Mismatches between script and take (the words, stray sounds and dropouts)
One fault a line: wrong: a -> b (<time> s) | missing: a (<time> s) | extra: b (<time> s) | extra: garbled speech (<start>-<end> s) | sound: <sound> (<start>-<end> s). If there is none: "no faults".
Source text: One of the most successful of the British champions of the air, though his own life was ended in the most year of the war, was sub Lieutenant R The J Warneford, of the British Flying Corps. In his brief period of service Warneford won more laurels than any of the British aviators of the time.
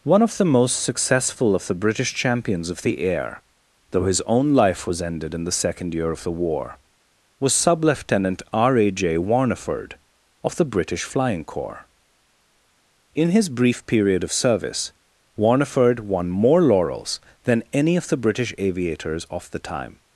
wrong: most -> second (5.5 s)
wrong: The -> A (8.8 s)